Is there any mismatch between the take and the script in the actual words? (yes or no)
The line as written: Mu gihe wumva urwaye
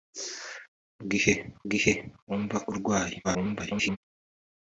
yes